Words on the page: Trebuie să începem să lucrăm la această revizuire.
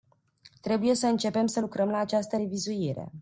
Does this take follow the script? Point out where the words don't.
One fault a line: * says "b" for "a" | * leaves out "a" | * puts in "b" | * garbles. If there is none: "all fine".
all fine